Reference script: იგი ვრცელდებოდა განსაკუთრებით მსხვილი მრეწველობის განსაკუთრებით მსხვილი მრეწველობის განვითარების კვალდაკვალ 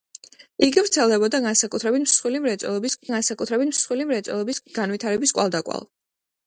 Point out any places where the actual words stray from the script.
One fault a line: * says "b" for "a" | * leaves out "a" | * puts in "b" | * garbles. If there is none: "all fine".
all fine